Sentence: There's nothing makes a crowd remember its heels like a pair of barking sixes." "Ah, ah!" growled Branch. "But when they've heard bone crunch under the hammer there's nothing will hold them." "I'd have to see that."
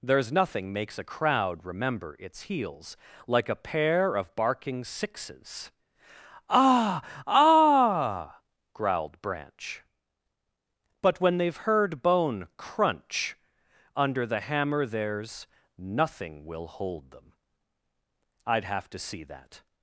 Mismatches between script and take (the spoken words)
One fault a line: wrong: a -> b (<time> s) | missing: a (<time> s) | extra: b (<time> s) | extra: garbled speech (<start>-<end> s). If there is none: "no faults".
no faults